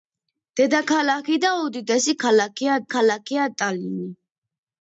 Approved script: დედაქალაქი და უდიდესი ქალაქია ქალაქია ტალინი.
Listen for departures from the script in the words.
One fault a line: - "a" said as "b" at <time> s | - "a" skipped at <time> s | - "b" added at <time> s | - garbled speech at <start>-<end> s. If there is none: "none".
none